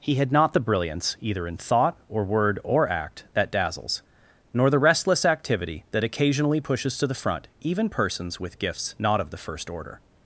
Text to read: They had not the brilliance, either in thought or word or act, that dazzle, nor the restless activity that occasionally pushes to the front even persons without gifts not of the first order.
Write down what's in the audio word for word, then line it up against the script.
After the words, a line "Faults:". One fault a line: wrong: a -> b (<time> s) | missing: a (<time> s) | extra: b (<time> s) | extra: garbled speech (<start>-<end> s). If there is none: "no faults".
He had not the brilliance, either in thought or word or act, that dazzles, nor the restless activity that occasionally pushes to the front even persons with gifts not of the first order.
Faults:
wrong: They -> He (0.0 s)
wrong: dazzle -> dazzles (3.5 s)
wrong: without -> with (8.4 s)